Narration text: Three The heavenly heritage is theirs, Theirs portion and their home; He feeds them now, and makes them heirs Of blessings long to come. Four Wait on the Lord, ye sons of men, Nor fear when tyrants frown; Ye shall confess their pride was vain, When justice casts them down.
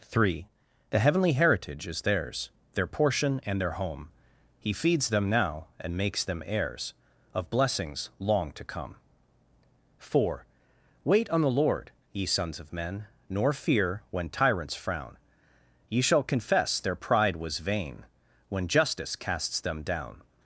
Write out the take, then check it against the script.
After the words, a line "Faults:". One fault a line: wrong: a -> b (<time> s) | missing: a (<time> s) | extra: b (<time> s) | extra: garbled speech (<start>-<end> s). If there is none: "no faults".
Three The heavenly heritage is theirs, Their portion and their home; He feeds them now, and makes them heirs Of blessings long to come. Four Wait on the Lord, ye sons of men, Nor fear when tyrants frown; Ye shall confess their pride was vain, When justice casts them down.
Faults:
wrong: Theirs -> Their (2.7 s)